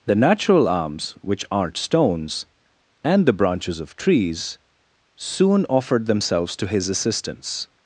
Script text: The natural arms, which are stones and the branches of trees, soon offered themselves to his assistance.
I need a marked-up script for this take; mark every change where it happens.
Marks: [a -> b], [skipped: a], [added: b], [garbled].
The natural arms, which [are -> aren't] stones and the branches of trees, soon offered themselves to his assistance.